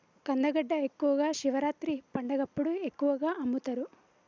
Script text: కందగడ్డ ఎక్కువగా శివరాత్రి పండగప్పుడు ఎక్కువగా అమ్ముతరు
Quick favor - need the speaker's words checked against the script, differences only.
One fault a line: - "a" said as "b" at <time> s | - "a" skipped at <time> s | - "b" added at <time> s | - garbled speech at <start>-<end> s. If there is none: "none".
none